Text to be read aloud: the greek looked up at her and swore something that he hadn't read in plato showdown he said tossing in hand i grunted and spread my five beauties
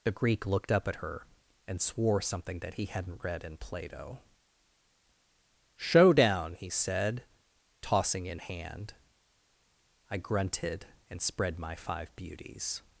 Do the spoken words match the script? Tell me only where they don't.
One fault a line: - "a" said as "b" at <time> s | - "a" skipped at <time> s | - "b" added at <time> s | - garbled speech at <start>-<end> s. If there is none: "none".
none